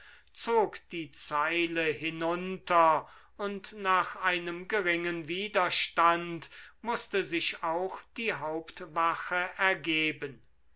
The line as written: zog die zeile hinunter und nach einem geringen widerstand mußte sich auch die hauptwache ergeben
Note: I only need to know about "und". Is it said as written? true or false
true